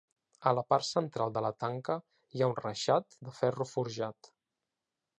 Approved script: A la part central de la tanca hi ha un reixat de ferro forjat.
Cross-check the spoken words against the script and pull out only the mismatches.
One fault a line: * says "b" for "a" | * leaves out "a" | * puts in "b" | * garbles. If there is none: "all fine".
all fine